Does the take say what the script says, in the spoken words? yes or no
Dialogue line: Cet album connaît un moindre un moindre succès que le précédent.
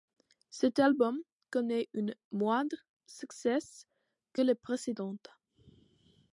no